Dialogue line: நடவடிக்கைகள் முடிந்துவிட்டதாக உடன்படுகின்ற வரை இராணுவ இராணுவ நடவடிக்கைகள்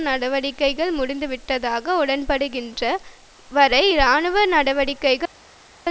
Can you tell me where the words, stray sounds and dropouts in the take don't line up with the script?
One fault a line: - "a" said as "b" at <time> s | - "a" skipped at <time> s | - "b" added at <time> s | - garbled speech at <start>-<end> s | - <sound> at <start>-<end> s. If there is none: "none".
- "இராணுவ" skipped at 4.4 s